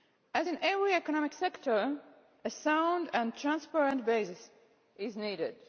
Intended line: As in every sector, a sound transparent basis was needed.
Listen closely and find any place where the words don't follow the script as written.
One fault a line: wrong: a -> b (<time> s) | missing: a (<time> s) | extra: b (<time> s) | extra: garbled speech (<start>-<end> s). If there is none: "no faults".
extra: economic (0.9 s)
extra: and (3.1 s)
wrong: was -> is (5.0 s)